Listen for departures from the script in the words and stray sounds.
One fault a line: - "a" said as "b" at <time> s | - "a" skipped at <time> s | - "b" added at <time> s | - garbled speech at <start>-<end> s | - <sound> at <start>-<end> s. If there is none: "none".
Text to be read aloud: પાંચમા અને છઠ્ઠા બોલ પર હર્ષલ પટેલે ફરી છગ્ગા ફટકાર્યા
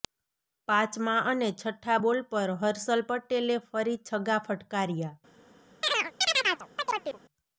- chirp at 5.8-7.2 s